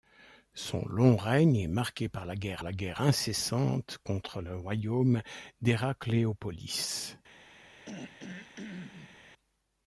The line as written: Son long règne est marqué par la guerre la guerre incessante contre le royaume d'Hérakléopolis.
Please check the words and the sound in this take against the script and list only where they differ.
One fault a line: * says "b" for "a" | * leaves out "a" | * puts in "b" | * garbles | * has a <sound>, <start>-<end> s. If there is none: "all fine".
* has a throat clearing, 7.8-9.2 s